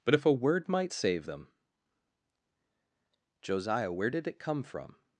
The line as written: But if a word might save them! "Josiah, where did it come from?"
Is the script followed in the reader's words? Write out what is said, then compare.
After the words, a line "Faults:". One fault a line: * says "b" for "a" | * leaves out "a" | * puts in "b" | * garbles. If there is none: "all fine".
But if a word might save them! "Josiah, where did it come from?"
Faults:
all fine